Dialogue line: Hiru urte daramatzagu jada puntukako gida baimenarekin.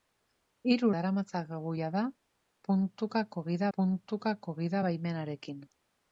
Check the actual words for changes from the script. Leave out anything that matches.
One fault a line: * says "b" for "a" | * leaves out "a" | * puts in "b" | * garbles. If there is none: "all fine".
* leaves out "urte"
* puts in "puntukako gida"